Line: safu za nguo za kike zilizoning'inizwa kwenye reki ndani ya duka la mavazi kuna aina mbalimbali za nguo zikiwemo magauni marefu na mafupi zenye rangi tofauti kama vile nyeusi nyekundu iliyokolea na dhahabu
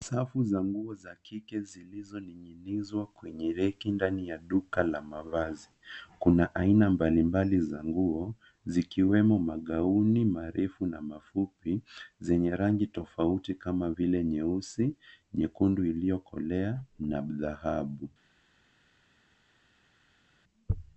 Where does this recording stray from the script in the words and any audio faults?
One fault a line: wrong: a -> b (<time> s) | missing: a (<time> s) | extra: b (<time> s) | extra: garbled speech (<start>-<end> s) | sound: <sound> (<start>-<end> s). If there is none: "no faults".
no faults